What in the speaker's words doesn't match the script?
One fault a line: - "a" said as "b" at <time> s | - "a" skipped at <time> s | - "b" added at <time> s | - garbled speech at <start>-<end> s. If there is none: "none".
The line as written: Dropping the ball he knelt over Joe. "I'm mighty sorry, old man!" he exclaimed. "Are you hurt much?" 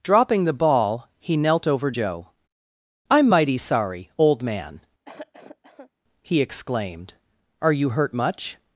none